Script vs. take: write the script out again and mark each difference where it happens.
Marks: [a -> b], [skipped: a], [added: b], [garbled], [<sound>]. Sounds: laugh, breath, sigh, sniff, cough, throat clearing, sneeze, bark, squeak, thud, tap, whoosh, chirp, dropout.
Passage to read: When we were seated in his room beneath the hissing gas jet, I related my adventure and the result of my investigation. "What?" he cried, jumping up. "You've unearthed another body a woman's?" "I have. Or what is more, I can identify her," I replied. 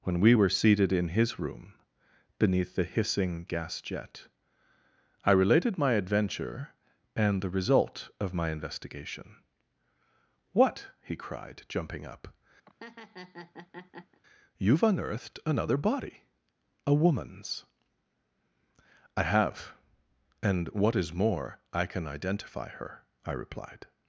When we were seated in his room beneath the hissing gas jet, I related my adventure and the result of my investigation. "What?" he cried, jumping up. [laugh] "You've unearthed another body a woman's?" "I have. [Or -> And] what is more, I can identify her," I replied.